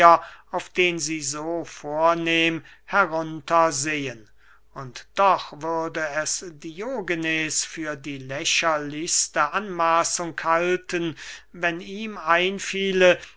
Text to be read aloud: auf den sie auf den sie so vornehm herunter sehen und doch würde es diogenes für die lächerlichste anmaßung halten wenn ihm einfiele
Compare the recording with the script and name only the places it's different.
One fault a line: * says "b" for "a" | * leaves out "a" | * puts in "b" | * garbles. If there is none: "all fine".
* leaves out "auf den sie"